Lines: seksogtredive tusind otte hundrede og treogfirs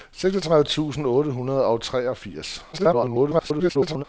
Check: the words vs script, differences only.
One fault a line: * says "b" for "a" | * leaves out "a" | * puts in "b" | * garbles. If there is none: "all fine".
* garbles